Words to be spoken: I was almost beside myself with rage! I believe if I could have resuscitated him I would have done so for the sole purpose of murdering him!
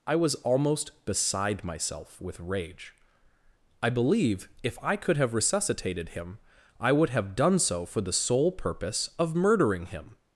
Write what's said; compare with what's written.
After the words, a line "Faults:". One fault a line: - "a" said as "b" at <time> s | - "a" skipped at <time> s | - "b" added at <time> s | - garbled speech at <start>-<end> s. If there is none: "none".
I was almost beside myself with rage! I believe if I could have resuscitated him I would have done so for the sole purpose of murdering him!
Faults:
none